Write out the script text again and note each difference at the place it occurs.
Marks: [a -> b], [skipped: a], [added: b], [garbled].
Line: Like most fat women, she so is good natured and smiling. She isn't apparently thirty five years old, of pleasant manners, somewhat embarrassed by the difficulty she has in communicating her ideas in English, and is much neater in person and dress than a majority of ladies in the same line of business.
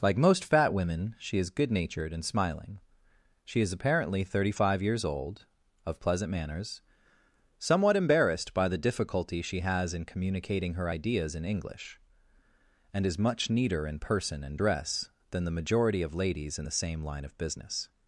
Like most fat women, she [skipped: so] is good natured and smiling. She [isn't -> is] apparently thirty five years old, of pleasant manners, somewhat embarrassed by the difficulty she has in communicating her ideas in English, and is much neater in person and dress than [a -> the] majority of ladies in the same line of business.